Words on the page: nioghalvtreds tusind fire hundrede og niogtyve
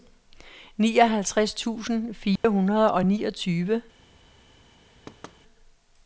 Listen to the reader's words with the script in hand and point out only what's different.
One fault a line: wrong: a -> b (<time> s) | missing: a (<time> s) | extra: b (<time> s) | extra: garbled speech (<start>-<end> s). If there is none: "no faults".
no faults